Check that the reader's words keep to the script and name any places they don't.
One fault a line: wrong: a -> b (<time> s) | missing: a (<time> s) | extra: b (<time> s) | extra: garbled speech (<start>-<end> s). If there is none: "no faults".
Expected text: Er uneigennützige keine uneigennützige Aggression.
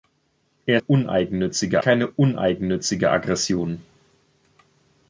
no faults